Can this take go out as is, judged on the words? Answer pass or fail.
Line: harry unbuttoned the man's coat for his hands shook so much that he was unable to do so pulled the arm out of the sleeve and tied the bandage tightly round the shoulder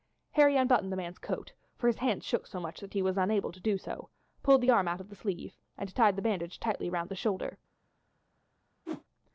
pass